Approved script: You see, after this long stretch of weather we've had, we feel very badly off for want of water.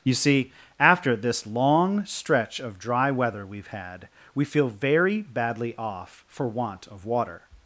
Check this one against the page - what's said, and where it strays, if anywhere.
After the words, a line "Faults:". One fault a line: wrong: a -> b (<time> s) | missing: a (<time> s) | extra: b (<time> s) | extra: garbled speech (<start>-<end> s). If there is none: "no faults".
You see, after this long stretch of dry weather we've had, we feel very badly off for want of water.
Faults:
extra: dry (2.8 s)